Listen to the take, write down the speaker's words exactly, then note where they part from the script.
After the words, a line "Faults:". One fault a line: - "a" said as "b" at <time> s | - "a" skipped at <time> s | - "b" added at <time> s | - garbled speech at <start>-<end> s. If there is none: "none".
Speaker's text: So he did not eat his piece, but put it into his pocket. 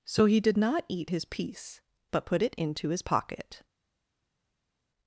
So he did not eat his piece, but put it into his pocket.
Faults:
none